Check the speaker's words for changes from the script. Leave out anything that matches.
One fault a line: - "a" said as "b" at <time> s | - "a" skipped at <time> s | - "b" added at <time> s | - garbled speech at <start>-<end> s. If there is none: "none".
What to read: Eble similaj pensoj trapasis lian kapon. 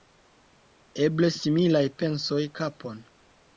- "trapasis lian" skipped at 2.4 s